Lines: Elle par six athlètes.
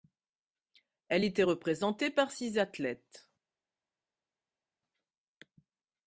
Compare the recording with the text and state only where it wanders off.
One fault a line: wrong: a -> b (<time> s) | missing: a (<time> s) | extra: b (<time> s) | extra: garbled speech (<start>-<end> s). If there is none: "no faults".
extra: était représentée (1.2 s)